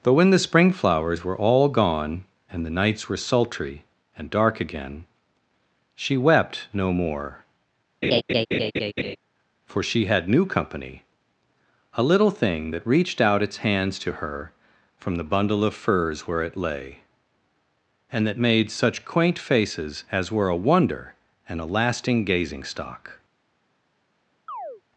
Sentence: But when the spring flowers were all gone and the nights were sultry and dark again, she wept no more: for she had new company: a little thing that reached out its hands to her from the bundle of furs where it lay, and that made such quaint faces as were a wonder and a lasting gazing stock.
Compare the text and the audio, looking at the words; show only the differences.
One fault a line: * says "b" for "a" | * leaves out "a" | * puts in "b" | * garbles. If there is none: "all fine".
all fine